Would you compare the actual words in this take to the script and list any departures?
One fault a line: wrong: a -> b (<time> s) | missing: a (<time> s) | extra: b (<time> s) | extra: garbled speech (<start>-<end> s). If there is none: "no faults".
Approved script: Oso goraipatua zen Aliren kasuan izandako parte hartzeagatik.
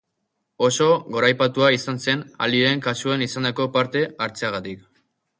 extra: izan (1.8 s)